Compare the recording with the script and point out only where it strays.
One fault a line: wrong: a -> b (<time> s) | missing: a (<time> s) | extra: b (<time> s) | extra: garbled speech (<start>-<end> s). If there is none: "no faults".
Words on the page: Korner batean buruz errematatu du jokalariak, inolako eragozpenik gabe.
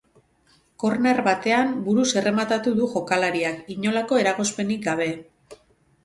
no faults